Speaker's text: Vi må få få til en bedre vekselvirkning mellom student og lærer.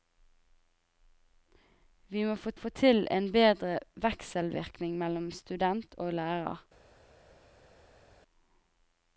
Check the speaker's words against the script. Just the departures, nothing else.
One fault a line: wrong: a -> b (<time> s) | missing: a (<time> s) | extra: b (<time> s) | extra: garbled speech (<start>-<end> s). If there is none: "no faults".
no faults